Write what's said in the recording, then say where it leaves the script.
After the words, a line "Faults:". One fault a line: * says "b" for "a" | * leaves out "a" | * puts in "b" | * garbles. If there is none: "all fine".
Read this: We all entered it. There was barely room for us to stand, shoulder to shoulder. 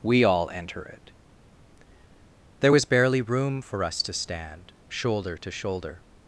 We all enter it. There was barely room for us to stand, shoulder to shoulder.
Faults:
* says "enter" for "entered"